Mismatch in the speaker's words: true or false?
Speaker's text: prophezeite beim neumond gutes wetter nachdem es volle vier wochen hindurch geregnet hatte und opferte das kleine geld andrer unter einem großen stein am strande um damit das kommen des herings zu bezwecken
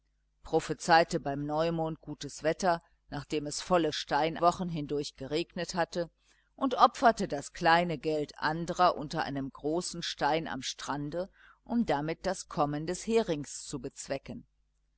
true